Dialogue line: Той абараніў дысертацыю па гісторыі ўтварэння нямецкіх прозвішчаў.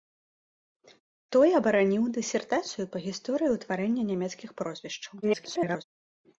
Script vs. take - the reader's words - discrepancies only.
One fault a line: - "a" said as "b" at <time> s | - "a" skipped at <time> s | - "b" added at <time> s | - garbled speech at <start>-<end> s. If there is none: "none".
- garbled speech at 5.2-5.8 s